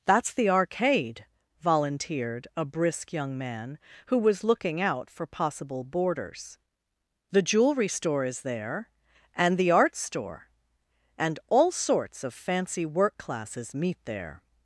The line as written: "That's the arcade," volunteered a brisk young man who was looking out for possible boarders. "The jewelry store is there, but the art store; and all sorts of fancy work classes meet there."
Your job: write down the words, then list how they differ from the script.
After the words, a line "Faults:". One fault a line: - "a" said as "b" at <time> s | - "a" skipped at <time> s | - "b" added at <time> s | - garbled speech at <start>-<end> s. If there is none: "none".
"That's the arcade," volunteered a brisk young man who was looking out for possible boarders. "The jewelry store is there, and the art store; and all sorts of fancy work classes meet there."
Faults:
- "but" said as "and" at 9.3 s